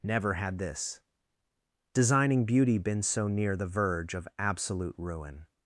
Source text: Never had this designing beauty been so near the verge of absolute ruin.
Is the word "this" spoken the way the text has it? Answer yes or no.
yes